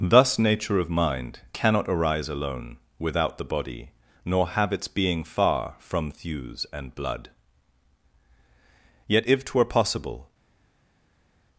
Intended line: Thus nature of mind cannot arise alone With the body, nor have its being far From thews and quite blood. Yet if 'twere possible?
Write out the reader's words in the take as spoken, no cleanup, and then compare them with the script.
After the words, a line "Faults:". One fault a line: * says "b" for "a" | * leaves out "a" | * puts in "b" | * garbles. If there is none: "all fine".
Thus nature of mind cannot arise alone Without the body, nor have its being far From thews and blood. Yet if 'twere possible?
Faults:
* says "Without" for "With"
* leaves out "quite"